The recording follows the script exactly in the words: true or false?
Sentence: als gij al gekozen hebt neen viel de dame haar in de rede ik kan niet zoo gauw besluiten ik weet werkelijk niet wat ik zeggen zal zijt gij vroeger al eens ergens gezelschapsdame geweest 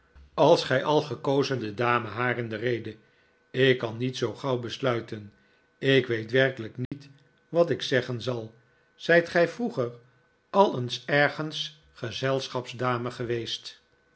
false